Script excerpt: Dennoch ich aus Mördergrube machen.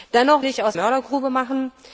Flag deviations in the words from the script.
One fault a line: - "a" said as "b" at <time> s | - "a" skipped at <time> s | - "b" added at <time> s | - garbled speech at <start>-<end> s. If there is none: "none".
none